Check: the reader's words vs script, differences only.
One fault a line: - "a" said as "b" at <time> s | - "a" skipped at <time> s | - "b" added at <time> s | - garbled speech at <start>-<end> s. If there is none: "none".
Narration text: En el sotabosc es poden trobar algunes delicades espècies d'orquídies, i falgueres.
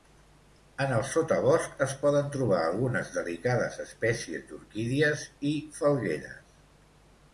none